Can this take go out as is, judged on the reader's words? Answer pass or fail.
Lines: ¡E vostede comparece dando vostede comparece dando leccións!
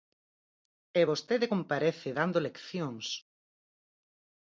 fail